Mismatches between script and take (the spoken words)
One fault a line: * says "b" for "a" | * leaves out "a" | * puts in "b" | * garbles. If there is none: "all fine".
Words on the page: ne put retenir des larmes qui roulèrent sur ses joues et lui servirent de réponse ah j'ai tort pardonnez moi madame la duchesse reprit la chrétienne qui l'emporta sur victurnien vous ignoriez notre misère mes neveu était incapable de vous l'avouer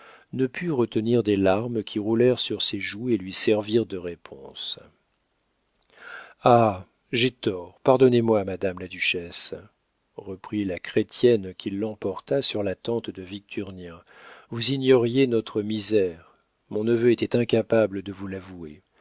* puts in "la tante de"
* says "mon" for "mes"